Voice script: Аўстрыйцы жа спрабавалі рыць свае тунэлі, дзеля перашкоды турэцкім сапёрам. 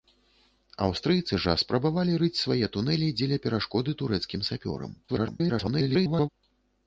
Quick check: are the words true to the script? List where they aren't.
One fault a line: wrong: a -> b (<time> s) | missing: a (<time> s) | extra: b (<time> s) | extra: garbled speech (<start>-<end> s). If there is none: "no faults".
extra: garbled speech (5.1-6.3 s)